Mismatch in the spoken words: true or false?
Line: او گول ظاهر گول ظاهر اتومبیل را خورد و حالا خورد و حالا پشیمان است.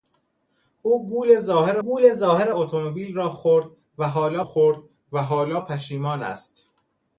false